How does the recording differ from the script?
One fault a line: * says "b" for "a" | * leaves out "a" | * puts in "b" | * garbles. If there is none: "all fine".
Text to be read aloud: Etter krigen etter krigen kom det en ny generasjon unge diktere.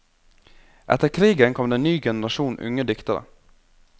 * leaves out "etter krigen"